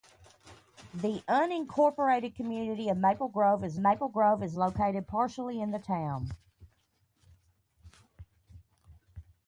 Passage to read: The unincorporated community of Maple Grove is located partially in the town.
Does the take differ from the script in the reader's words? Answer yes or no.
yes